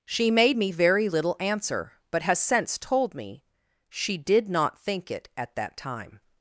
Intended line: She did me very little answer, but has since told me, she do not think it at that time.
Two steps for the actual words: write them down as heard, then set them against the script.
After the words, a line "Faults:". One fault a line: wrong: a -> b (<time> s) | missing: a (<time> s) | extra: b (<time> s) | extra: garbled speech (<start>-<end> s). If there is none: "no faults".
She made me very little answer, but has since told me, she did not think it at that time.
Faults:
wrong: did -> made (0.3 s)
wrong: do -> did (4.2 s)